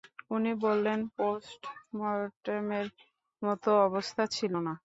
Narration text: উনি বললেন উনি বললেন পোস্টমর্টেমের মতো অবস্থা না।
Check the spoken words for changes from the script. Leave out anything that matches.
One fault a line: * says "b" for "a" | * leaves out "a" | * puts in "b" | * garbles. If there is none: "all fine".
* leaves out "উনি বললেন"
* puts in "ছিল"